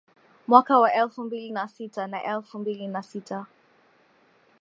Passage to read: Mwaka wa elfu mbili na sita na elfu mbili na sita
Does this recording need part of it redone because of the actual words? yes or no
no